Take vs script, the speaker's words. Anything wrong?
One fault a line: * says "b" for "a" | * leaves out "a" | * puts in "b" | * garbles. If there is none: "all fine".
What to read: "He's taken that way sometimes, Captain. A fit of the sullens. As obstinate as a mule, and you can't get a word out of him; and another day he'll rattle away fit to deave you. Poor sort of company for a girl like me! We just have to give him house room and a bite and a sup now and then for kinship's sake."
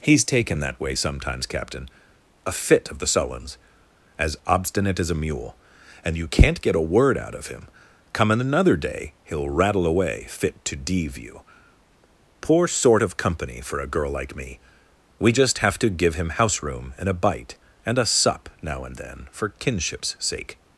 * says "come in" for "and"